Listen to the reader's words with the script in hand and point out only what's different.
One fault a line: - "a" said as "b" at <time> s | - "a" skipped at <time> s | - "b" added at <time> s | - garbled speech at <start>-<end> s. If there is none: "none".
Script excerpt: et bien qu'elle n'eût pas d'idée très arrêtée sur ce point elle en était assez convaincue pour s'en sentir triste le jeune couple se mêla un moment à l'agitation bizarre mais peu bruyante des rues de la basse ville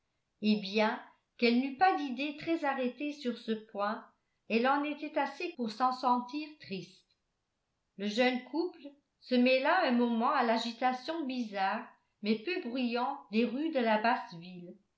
- "convaincue" skipped at 5.5 s